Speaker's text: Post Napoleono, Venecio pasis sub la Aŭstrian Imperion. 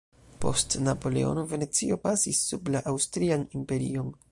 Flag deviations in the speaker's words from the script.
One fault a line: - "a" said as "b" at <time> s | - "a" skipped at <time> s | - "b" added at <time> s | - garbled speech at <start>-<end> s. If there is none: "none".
none